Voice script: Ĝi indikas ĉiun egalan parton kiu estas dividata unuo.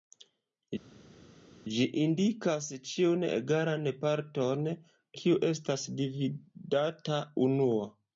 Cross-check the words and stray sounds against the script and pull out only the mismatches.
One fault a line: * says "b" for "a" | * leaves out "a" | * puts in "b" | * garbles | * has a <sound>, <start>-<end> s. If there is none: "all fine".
all fine